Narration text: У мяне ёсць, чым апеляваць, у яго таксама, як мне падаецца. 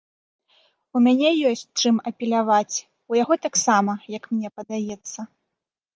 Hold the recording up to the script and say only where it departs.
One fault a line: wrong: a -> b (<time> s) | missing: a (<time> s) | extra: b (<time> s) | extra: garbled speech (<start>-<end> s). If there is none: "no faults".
no faults